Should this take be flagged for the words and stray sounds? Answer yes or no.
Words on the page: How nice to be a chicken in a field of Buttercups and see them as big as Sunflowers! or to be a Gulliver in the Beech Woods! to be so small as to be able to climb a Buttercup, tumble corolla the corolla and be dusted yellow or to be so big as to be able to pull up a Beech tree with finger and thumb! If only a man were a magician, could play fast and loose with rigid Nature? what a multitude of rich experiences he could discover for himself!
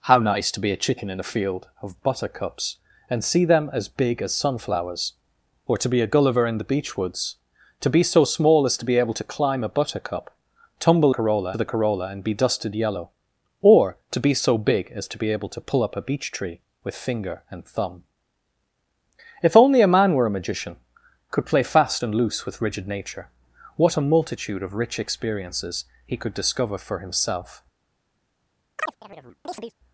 yes